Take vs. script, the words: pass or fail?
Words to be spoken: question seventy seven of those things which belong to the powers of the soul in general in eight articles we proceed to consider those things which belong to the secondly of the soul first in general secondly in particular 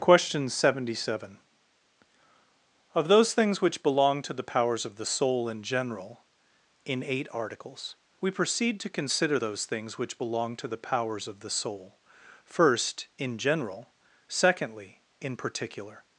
fail